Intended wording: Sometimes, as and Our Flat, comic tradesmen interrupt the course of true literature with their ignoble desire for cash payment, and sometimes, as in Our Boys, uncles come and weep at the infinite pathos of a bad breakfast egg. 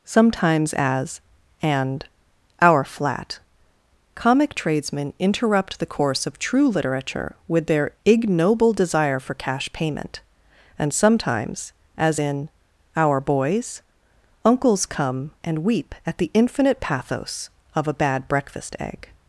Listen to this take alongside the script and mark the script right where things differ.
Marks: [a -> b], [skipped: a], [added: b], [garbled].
Sometimes, as and Our Flat, comic tradesmen interrupt the course of true literature with their ignoble desire for cash payment, and sometimes, as in Our Boys, uncles come and weep at the infinite pathos of a bad breakfast egg.